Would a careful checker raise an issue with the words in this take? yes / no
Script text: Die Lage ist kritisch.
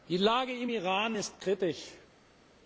yes